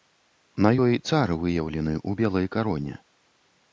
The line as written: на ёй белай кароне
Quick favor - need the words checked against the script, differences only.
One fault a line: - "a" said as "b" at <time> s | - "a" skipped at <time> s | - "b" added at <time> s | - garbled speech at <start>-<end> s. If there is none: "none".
- "цар выяўлены ў" added at 1.1 s